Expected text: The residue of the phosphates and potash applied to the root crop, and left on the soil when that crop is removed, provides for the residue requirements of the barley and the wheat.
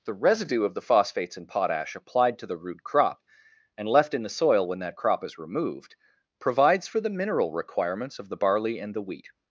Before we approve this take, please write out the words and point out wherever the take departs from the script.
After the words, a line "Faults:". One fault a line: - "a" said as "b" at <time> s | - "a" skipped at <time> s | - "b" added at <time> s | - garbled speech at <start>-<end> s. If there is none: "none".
The residue of the phosphates and potash applied to the root crop, and left in the soil when that crop is removed, provides for the mineral requirements of the barley and the wheat.
Faults:
- "on" said as "in" at 4.1 s
- "residue" said as "mineral" at 7.1 s